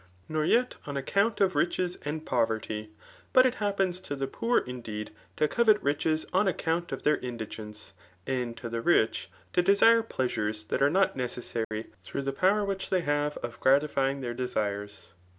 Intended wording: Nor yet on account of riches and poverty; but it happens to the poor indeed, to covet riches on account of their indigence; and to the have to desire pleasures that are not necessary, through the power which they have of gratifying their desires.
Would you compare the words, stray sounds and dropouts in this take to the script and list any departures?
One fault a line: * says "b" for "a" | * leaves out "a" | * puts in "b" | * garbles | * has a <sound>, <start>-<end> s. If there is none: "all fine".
* says "rich" for "have"
* has a dropout, 11.6-11.7 s